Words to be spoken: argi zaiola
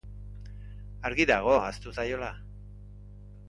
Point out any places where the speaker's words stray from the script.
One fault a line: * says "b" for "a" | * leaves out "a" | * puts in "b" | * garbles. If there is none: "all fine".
* puts in "dago ahaztu"